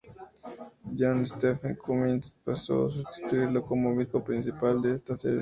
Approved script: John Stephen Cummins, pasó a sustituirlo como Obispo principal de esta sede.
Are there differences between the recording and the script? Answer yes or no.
no